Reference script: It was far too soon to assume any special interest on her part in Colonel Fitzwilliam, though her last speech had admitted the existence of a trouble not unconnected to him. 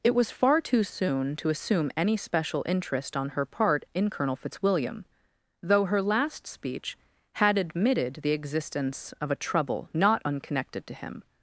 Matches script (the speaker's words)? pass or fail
pass